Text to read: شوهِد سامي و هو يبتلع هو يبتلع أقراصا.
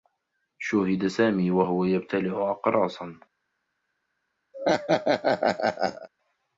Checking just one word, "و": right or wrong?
right